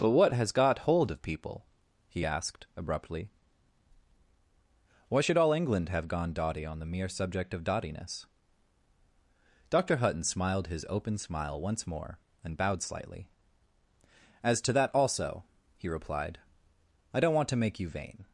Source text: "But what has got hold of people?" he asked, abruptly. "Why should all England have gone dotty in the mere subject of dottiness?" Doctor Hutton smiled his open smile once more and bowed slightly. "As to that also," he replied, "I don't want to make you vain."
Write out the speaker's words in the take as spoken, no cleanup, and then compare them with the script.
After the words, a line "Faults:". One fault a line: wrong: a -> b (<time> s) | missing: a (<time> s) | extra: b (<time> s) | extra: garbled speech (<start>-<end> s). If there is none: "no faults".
"But what has got hold of people?" he asked, abruptly. "Why should all England have gone dotty on the mere subject of dottiness?" Doctor Hutton smiled his open smile once more and bowed slightly. "As to that also," he replied, "I don't want to make you vain."
Faults:
wrong: in -> on (6.7 s)